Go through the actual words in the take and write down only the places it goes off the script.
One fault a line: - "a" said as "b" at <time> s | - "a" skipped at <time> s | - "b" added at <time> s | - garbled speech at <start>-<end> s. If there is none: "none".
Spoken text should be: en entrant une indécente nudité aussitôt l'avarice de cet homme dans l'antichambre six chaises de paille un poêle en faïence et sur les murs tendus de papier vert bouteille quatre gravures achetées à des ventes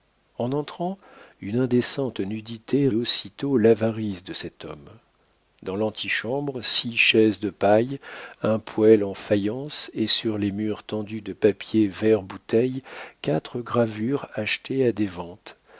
none